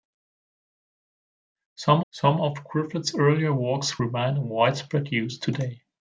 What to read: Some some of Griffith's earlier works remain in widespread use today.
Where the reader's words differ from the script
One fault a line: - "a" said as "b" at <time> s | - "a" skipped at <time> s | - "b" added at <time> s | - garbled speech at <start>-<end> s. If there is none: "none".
none